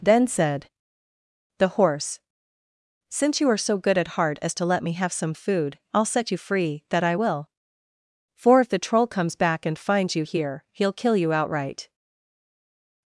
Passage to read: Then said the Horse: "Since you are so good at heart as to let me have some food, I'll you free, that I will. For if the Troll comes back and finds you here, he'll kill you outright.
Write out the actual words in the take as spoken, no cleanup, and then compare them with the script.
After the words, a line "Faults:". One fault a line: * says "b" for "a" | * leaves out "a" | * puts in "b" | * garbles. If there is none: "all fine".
Then said the Horse: "Since you are so good at heart as to let me have some food, I'll set you free, that I will. For if the Troll comes back and finds you here, he'll kill you outright.
Faults:
* puts in "set"